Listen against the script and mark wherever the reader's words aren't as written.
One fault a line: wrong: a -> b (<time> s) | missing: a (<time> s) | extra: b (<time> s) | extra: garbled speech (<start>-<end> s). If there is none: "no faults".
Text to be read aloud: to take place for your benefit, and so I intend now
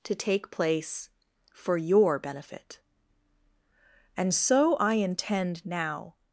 no faults